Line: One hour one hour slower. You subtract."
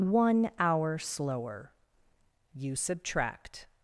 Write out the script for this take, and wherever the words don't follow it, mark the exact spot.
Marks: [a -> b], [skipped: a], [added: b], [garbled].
One hour [skipped: one hour] slower. You subtract."